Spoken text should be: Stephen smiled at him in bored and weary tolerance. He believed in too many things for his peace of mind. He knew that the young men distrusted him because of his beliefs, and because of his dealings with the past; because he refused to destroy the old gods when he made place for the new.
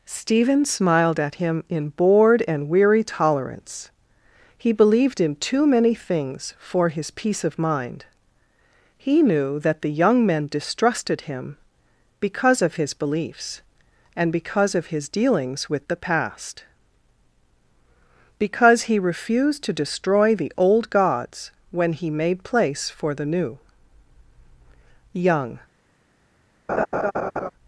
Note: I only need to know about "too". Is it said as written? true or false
true